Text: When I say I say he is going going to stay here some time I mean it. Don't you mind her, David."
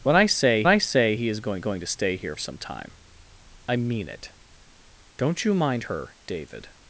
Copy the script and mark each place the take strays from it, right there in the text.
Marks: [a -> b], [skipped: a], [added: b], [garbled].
When I say I say he is going going to stay here some time I mean it. Don't you mind her, David."